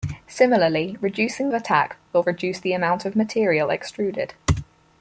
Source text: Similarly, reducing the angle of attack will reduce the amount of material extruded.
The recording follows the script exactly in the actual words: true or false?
false